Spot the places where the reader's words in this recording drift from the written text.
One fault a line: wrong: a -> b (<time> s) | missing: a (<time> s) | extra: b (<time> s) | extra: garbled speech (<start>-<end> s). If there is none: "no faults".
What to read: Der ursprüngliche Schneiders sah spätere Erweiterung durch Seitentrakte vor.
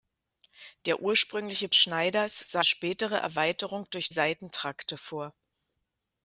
no faults